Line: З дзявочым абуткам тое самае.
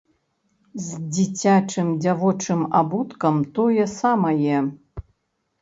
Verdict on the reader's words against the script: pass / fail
fail